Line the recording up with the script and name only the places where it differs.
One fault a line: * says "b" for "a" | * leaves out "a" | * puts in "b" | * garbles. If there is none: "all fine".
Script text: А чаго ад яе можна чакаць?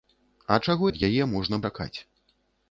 all fine